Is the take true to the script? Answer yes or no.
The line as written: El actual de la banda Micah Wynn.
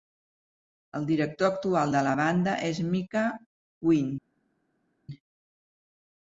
no